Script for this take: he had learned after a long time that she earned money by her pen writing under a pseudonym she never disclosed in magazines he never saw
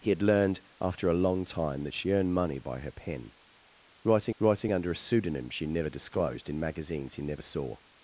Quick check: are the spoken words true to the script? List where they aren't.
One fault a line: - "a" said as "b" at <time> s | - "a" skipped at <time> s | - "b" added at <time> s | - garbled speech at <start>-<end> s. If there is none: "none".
- "writing" added at 4.4 s